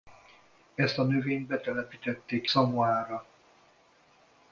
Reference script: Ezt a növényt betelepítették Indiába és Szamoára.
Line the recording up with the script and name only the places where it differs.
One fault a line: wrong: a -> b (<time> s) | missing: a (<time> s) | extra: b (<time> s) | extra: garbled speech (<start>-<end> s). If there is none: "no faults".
missing: Indiába és (2.5 s)